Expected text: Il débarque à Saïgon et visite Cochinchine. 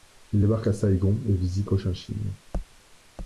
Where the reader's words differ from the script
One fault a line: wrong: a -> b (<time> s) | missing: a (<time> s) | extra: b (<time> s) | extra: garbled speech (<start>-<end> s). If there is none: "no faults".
no faults